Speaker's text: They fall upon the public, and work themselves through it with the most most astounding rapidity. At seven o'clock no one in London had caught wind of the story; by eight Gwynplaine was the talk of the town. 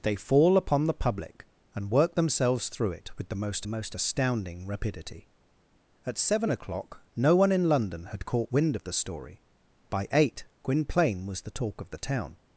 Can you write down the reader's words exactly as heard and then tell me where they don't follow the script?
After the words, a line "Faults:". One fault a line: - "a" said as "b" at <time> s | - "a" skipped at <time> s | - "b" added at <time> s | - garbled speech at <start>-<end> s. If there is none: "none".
They fall upon the public, and work themselves through it with the most most astounding rapidity. At seven o'clock no one in London had caught wind of the story; by eight Gwynplaine was the talk of the town.
Faults:
none